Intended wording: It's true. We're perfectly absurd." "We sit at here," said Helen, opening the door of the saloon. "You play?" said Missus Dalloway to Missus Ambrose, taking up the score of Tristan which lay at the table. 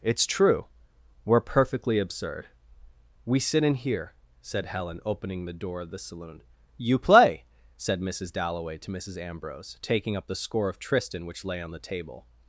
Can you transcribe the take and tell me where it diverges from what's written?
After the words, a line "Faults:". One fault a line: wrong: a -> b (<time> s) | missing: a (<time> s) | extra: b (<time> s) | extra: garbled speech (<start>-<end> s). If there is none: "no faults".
It's true. We're perfectly absurd." "We sit in here," said Helen, opening the door of the saloon. "You play?" said Missus Dalloway to Missus Ambrose, taking up the score of Tristan which lay on the table.
Faults:
wrong: at -> in (3.6 s)
wrong: at -> on (11.6 s)